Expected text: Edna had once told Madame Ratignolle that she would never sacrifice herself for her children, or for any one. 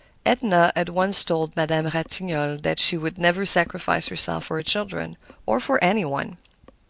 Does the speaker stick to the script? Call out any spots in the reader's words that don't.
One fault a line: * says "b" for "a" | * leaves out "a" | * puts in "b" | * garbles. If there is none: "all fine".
all fine